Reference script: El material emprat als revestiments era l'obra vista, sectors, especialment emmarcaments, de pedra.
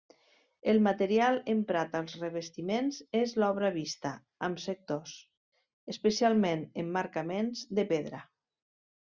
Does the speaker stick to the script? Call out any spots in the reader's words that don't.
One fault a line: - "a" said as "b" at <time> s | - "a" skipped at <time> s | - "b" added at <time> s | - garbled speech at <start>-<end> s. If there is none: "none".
- "era" said as "és" at 3.2 s
- "amb" added at 4.5 s